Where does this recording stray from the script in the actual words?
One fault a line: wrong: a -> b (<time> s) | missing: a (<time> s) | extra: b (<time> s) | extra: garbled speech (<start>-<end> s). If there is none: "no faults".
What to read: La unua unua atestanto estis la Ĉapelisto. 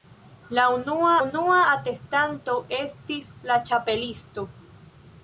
no faults